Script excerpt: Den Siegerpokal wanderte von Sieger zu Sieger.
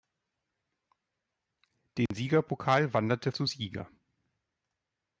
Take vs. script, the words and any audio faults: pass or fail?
fail